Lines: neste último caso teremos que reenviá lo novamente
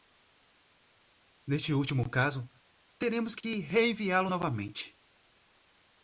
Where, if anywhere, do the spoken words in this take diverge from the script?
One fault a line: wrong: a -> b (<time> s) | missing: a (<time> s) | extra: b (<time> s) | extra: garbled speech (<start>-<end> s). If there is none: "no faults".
no faults